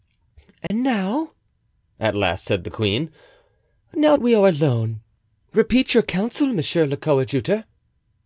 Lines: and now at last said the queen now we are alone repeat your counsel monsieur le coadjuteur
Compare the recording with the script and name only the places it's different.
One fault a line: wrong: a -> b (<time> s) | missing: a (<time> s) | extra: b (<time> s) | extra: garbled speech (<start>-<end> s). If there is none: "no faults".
no faults